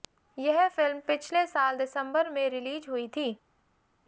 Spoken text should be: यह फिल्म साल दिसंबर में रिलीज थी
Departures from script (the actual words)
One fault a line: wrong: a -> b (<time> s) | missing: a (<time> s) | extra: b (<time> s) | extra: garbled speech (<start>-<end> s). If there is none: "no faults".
extra: पिछले (1.0 s)
extra: हुई (2.9 s)